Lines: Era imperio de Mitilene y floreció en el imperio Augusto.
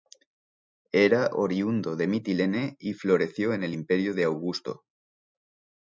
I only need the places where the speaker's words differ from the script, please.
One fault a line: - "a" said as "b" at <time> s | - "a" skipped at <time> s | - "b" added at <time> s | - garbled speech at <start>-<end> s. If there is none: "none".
- "imperio" said as "oriundo" at 1.3 s
- "de" added at 4.1 s